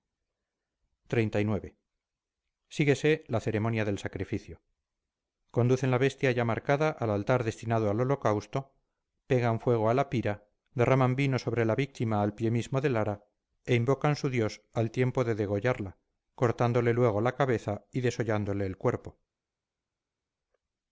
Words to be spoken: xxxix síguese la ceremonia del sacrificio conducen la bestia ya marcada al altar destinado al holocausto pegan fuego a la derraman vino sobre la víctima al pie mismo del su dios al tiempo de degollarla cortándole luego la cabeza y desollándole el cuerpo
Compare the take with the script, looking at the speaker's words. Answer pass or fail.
fail